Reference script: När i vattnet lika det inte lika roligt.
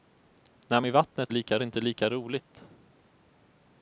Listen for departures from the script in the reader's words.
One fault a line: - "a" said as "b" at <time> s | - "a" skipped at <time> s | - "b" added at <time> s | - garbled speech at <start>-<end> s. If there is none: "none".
none